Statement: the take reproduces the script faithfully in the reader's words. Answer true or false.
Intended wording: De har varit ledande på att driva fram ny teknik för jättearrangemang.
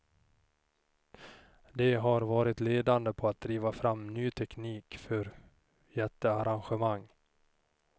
true